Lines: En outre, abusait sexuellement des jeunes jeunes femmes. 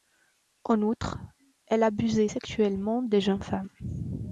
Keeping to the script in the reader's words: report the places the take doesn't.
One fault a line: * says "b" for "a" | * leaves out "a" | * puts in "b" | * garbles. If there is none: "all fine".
* puts in "elle"
* leaves out "jeunes"